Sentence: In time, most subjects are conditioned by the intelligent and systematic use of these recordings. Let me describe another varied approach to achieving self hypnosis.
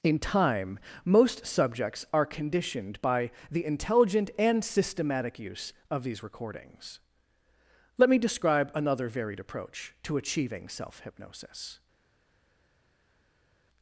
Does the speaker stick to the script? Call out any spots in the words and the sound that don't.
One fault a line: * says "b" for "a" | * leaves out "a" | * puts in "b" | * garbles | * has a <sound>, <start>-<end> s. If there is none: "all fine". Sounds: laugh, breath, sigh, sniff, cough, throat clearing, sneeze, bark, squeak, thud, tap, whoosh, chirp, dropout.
all fine